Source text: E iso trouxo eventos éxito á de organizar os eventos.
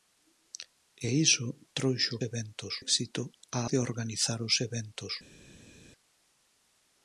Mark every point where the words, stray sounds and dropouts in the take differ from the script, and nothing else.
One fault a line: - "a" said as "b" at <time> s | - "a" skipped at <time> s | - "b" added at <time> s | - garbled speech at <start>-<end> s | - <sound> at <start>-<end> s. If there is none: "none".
none